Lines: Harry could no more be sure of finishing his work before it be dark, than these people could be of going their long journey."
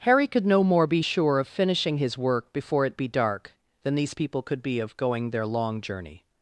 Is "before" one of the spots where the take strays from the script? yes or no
no